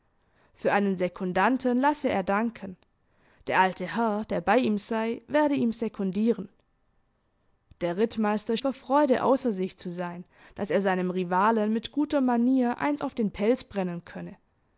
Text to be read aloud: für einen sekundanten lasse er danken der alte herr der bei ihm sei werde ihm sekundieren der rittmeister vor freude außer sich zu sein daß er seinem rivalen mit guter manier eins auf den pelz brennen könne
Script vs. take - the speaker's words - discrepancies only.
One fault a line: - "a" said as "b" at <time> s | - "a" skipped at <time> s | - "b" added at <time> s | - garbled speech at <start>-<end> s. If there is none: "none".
none